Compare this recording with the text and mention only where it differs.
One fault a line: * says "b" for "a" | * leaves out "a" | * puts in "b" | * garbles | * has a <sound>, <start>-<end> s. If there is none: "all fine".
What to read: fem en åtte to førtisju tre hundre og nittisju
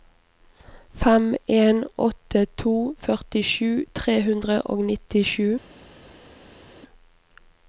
all fine